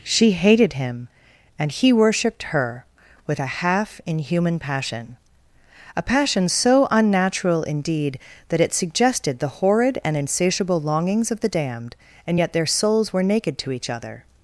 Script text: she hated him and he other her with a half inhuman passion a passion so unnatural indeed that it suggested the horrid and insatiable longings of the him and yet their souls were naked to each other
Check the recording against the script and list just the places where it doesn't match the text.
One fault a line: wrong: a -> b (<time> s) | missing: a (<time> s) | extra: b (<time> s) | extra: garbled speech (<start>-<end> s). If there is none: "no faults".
wrong: other -> worshipped (1.9 s)
wrong: him -> damned (11.5 s)